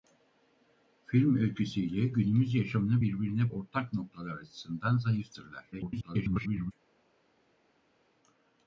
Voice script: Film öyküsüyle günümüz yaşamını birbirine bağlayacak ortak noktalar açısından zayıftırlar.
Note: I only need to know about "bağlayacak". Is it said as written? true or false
false